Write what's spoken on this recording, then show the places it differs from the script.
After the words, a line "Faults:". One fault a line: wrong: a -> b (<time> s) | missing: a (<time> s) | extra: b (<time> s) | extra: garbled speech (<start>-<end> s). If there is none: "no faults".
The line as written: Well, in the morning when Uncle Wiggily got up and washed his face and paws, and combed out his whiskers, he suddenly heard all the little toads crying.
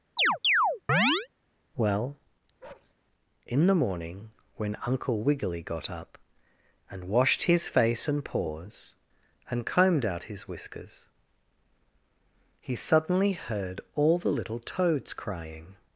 Well, in the morning when Uncle Wiggily got up and washed his face and paws, and combed out his whiskers, he suddenly heard all the little toads crying.
Faults:
no faults